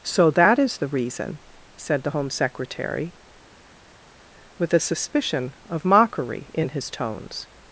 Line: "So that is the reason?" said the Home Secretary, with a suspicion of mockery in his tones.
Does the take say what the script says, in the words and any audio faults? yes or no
yes